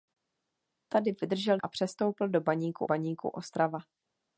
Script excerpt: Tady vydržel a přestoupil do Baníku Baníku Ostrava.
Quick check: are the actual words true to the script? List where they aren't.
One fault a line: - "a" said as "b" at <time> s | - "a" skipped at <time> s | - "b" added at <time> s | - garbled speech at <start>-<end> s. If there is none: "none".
none